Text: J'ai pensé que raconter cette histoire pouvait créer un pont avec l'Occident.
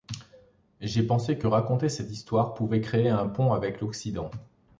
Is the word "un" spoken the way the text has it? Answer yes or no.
yes